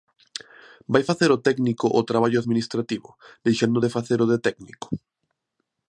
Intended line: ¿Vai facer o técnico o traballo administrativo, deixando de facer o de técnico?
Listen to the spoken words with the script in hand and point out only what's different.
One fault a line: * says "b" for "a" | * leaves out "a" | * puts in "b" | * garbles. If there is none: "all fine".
all fine